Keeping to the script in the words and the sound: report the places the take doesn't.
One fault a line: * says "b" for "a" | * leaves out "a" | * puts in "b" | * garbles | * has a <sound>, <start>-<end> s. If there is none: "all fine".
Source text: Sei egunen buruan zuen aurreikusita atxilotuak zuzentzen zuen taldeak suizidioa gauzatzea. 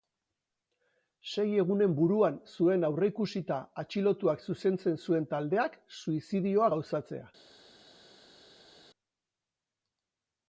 all fine